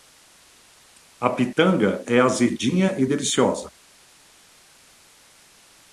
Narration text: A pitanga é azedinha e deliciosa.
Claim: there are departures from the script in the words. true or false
false